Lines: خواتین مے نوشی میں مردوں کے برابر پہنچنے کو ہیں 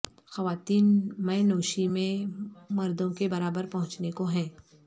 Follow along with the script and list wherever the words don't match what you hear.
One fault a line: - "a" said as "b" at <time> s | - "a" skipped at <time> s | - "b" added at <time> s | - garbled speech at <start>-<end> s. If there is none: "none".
none